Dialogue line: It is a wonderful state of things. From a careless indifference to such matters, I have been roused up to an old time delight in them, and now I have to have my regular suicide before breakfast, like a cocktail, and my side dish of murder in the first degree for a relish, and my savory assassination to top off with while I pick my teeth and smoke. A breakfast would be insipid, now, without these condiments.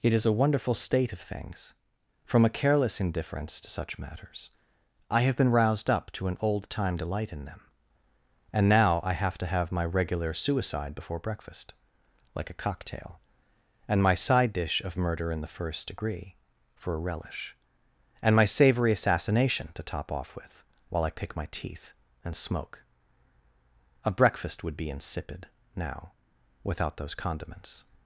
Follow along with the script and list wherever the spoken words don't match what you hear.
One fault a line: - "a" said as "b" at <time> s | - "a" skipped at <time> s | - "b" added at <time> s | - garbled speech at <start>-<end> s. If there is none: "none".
- "these" said as "those" at 27.0 s